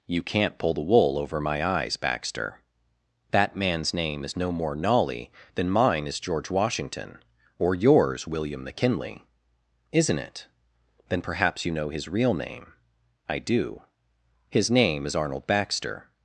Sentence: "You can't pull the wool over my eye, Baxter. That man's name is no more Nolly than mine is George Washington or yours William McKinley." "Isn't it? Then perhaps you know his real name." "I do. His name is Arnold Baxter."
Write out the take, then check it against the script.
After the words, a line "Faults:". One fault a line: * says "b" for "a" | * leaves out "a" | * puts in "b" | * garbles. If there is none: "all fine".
"You can't pull the wool over my eyes, Baxter. That man's name is no more Nolly than mine is George Washington or yours William McKinley." "Isn't it? Then perhaps you know his real name." "I do. His name is Arnold Baxter."
Faults:
* says "eyes" for "eye"